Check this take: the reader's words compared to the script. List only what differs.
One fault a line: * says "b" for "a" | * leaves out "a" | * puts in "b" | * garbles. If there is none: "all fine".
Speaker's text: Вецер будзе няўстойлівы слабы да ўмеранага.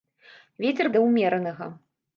* leaves out "будзе няўстойлівы слабы"